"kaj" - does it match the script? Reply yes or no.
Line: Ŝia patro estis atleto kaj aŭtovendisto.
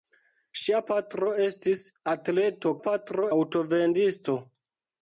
no